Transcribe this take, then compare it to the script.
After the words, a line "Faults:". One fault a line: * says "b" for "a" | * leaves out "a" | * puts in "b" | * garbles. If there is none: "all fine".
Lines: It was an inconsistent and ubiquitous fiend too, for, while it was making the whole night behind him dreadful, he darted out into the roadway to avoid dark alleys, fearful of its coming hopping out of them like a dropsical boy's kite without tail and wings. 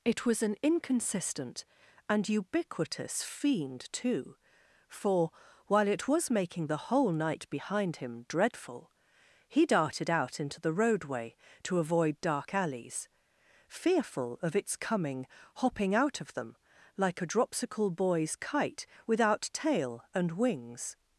It was an inconsistent and ubiquitous fiend too, for, while it was making the whole night behind him dreadful, he darted out into the roadway to avoid dark alleys, fearful of its coming hopping out of them like a dropsical boy's kite without tail and wings.
Faults:
all fine